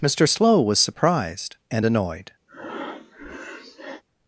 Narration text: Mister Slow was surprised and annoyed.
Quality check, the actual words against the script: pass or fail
pass